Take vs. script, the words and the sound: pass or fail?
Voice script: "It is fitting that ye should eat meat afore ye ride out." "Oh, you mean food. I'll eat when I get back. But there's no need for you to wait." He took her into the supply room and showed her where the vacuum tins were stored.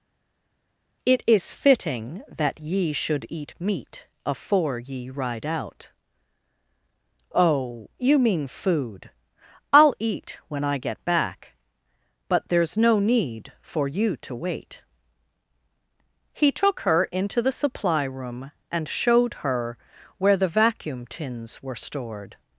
pass